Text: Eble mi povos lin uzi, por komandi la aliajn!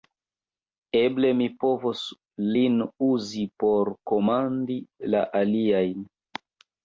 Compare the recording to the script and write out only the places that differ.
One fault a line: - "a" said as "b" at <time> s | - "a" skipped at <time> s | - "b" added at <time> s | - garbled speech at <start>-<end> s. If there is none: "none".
none